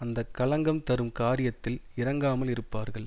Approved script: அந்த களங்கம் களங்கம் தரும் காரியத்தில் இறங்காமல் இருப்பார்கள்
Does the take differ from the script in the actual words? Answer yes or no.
yes